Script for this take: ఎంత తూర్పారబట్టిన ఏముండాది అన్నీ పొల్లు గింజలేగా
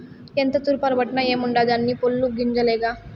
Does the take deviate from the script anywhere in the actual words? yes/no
no